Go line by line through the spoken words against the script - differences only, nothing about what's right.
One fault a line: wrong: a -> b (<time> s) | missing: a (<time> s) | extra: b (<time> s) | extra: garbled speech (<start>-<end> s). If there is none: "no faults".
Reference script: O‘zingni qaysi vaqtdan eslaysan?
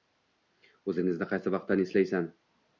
no faults